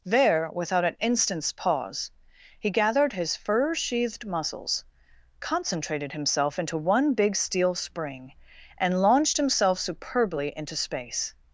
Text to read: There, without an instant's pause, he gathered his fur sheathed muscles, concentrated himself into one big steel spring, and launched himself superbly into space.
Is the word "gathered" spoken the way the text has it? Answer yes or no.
yes